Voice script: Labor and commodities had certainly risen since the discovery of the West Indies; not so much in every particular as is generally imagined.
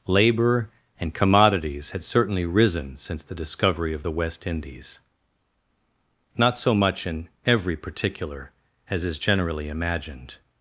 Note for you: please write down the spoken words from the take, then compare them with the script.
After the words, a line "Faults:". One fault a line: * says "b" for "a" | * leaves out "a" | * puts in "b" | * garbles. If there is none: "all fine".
Labor and commodities had certainly risen since the discovery of the West Indies; not so much in every particular as is generally imagined.
Faults:
all fine